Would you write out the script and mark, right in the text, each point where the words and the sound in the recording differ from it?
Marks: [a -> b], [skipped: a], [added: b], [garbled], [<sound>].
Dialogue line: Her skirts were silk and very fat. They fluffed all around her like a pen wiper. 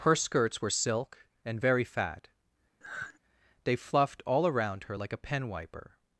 Her skirts were silk and very fat. [sigh] They fluffed all around her like a pen wiper.